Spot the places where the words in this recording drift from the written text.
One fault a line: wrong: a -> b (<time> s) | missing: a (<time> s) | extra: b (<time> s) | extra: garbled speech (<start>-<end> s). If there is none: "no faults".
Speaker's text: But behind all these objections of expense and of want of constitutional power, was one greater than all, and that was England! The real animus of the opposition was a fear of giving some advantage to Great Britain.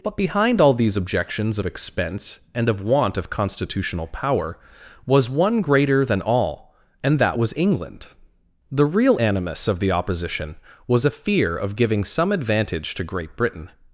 no faults